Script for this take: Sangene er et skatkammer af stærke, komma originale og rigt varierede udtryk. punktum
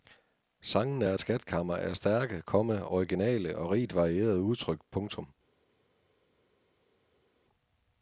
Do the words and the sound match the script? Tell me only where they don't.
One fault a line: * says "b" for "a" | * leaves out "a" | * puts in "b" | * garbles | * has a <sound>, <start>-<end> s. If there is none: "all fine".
all fine